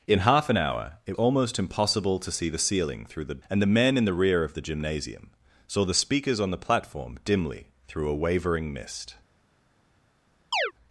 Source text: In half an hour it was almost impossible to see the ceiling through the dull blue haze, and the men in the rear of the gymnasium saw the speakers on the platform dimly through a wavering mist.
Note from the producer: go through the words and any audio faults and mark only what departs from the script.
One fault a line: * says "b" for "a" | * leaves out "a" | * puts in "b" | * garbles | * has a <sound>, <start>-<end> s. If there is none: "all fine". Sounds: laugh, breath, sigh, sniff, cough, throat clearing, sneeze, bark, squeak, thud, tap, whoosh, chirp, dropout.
* leaves out "was"
* leaves out "dull blue haze"
* has a chirp, 10.5-10.7 s